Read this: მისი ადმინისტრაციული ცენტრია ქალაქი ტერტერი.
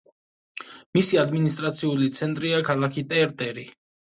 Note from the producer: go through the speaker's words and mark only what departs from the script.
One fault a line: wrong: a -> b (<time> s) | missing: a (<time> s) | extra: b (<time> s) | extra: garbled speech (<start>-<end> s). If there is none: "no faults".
no faults